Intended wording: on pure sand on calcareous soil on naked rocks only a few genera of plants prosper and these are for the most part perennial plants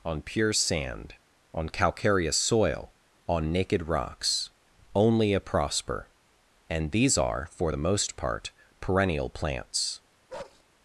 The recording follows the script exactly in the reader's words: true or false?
false